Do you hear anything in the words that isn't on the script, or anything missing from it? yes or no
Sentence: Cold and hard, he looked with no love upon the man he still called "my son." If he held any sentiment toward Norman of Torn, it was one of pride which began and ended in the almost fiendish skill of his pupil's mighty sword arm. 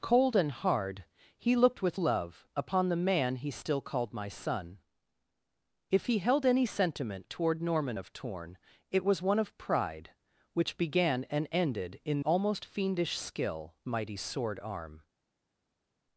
yes